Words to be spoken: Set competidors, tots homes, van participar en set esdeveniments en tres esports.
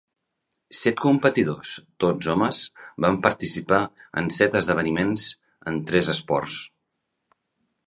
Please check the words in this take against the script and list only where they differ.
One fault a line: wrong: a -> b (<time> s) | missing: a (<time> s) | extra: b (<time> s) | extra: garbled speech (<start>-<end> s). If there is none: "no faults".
no faults